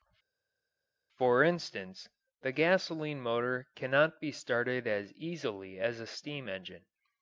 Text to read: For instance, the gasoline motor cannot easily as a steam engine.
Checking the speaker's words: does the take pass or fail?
fail